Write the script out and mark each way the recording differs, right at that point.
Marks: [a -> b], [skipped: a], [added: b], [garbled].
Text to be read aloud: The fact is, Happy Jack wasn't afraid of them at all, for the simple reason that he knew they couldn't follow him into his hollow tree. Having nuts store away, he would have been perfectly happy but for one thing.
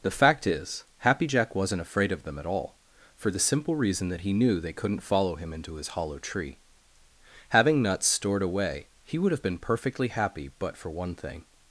The fact is, Happy Jack wasn't afraid of them at all, for the simple reason that he knew they couldn't follow him into his hollow tree. Having nuts [store -> stored] away, he would have been perfectly happy but for one thing.